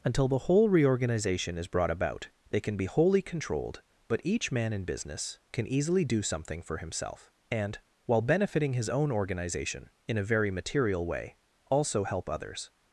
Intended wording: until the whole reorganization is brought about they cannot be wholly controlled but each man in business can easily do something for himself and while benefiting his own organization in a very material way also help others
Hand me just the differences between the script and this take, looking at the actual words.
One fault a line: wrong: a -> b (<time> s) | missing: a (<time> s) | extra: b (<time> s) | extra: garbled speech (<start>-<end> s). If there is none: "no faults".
wrong: cannot -> can (2.6 s)